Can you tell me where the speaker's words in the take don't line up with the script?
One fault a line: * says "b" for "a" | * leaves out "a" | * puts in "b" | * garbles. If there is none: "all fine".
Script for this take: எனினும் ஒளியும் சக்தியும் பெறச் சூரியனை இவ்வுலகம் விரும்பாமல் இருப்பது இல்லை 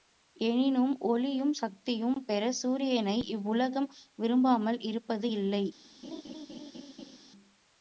all fine